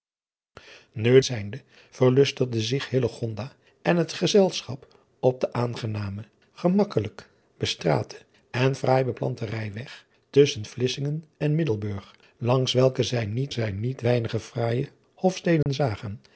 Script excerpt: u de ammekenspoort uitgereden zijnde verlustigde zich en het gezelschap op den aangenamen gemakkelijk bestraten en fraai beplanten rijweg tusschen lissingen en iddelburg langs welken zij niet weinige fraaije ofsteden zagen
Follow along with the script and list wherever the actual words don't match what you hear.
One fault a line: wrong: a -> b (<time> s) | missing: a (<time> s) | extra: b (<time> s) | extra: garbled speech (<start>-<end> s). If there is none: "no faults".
missing: de ammekenspoort uitgereden (1.2 s)
extra: zij niet (13.5 s)